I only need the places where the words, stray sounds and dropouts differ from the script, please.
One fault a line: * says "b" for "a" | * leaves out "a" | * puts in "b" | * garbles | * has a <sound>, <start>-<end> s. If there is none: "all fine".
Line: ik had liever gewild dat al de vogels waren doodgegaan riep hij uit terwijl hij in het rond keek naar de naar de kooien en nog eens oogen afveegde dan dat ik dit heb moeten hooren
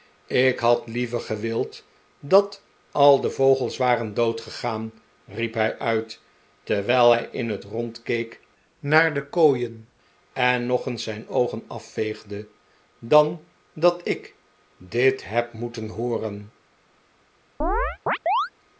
* leaves out "naar de"
* puts in "zijn"
* has a chirp, 17.6-18.5 s